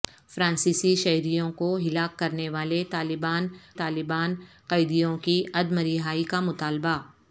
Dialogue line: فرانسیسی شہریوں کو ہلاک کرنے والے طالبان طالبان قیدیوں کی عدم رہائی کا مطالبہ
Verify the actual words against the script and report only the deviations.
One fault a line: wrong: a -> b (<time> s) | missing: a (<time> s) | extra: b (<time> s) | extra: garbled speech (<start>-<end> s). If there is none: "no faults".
no faults